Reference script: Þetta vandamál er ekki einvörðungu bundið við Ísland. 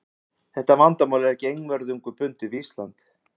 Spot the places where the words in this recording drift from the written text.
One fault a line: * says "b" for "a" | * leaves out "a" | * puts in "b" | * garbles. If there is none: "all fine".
all fine